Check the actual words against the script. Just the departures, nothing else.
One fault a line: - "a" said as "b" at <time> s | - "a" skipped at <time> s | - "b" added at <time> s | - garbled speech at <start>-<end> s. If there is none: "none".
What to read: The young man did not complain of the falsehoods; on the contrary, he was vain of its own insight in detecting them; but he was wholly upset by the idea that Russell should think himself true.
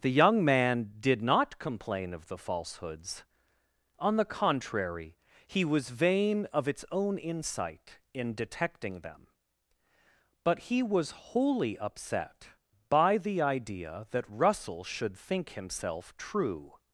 none